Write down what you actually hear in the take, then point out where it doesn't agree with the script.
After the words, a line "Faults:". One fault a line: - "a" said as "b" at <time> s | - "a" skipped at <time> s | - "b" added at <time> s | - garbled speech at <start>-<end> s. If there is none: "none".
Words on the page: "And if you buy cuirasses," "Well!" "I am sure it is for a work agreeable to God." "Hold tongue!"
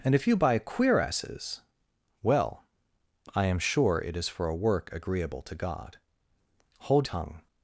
"And if you buy cuirasses," "Well!" "I am sure it is for a work agreeable to God." "Hold tongue!"
Faults:
none